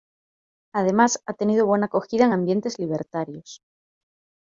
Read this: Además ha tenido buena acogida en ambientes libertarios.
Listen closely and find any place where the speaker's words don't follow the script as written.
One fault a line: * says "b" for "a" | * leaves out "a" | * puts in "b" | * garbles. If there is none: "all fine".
all fine